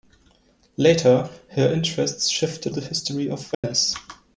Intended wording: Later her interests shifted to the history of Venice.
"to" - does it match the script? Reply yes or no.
no